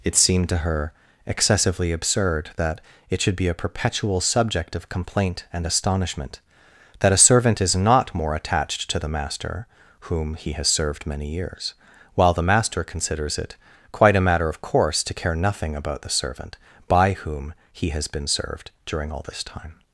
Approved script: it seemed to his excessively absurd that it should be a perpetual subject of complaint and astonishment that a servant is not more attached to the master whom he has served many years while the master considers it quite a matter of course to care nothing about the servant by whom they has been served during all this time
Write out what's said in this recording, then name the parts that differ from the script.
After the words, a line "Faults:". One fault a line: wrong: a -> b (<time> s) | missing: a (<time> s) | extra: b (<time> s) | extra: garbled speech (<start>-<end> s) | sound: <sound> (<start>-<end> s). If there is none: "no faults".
it seemed to her excessively absurd that it should be a perpetual subject of complaint and astonishment that a servant is not more attached to the master whom he has served many years while the master considers it quite a matter of course to care nothing about the servant by whom he has been served during all this time
Faults:
wrong: his -> her (0.6 s)
wrong: they -> he (17.7 s)